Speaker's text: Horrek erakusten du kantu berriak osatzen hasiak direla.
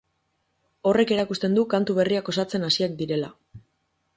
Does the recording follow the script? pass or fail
pass